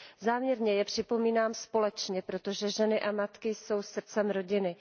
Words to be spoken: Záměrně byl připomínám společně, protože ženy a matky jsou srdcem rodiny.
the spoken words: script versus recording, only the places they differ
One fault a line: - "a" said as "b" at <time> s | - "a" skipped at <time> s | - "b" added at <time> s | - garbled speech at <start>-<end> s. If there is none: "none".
- "byl" said as "je" at 0.7 s